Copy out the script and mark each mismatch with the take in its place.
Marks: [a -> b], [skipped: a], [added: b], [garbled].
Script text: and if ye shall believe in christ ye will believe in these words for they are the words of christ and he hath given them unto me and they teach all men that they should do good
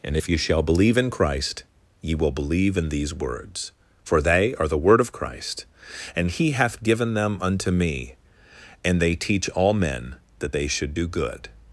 and if ye shall believe in christ ye will believe in these words for they are the [words -> word] of christ and he hath given them unto me and they teach all men that they should do good